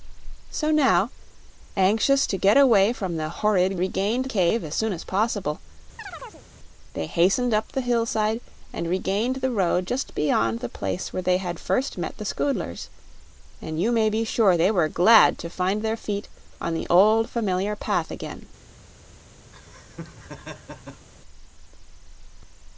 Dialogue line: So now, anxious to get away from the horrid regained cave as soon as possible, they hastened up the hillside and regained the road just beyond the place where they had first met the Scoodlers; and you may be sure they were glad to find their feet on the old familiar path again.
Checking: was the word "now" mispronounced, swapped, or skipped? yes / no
no